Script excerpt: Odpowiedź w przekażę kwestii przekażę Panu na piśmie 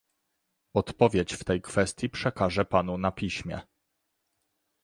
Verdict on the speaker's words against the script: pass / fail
fail